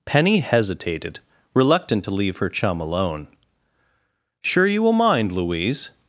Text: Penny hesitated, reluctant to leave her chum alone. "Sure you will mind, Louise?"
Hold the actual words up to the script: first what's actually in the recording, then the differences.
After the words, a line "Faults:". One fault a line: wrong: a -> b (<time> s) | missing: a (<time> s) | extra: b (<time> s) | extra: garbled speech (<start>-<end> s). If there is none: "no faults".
Penny hesitated, reluctant to leave her chum alone. "Sure you will mind, Louise?"
Faults:
no faults